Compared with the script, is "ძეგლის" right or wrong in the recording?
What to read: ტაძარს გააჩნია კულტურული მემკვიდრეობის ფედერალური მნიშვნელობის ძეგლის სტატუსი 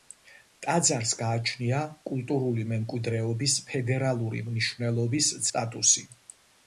wrong